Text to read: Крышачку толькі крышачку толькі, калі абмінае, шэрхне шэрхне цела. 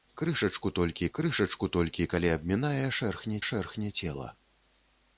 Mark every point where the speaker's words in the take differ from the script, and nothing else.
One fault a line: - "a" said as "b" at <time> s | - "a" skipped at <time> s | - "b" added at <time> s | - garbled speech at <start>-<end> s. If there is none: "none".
none